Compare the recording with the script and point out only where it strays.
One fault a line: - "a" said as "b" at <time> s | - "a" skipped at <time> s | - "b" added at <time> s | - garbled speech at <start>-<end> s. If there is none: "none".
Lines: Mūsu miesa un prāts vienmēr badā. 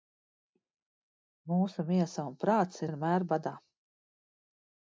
none